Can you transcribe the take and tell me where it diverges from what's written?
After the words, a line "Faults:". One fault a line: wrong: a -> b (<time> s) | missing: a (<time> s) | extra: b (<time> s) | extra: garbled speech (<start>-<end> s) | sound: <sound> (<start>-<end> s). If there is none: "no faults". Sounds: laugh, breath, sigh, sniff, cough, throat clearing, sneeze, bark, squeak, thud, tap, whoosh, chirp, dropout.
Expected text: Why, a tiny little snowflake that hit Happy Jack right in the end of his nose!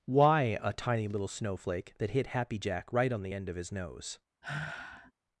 Why, a tiny little snowflake that hit Happy Jack right on the end of his nose!
Faults:
wrong: in -> on (3.1 s)
sound: sigh (4.4-5.1 s)